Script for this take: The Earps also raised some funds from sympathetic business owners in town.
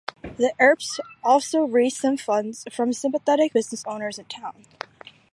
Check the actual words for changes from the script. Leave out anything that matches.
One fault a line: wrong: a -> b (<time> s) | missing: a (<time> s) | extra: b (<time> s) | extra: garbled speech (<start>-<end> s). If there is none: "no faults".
no faults